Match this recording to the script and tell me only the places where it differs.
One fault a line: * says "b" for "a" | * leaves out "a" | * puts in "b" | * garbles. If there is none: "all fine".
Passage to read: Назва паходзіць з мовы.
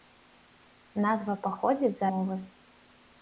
all fine